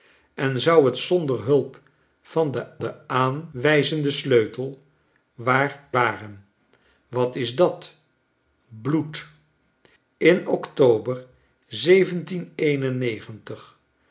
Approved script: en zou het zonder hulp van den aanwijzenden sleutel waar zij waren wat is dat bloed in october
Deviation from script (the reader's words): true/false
true